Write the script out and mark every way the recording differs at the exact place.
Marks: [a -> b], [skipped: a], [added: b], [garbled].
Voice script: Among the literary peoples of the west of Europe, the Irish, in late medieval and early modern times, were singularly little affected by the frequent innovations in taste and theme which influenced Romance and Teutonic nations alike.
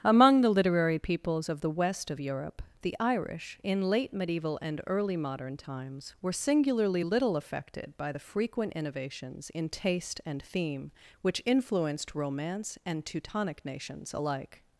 Among the literary peoples of the west of Europe, the Irish, in late medieval and early modern times, were singularly little affected by the frequent innovations in taste and theme which influenced Romance and Teutonic nations alike.